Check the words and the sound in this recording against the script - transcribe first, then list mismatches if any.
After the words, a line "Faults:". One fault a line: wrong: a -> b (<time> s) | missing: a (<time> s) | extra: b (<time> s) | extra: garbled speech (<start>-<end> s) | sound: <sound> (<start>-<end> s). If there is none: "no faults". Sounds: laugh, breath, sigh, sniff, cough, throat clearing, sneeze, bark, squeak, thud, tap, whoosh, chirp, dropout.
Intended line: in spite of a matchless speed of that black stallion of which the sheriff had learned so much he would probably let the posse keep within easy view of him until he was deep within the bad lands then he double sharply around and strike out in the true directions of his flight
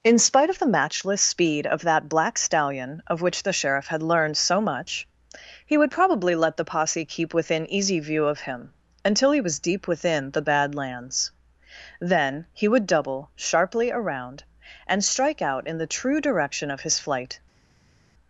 in spite of the matchless speed of that black stallion of which the sheriff had learned so much he would probably let the posse keep within easy view of him until he was deep within the bad lands then he would double sharply around and strike out in the true direction of his flight
Faults:
wrong: a -> the (0.6 s)
extra: would (12.7 s)
wrong: directions -> direction (16.2 s)